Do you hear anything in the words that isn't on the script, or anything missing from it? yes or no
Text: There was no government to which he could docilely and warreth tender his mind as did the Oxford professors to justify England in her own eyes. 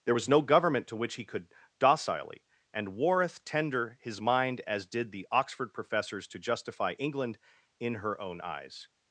no